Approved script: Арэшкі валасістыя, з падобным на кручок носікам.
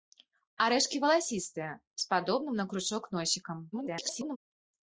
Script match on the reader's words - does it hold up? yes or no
no